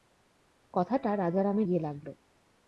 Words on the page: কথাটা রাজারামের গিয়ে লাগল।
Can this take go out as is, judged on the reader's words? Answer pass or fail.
pass